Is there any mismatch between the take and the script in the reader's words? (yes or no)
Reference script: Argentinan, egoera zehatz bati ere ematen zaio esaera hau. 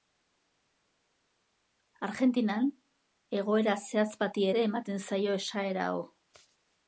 no